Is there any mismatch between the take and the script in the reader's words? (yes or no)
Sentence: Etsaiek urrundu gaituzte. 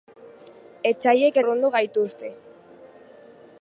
no